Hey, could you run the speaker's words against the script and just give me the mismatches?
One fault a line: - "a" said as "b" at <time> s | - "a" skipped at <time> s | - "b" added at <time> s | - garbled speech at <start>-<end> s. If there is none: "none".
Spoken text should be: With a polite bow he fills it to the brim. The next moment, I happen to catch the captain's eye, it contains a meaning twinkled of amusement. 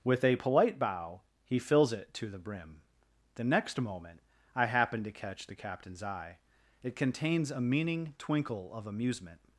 - "twinkled" said as "twinkle" at 8.2 s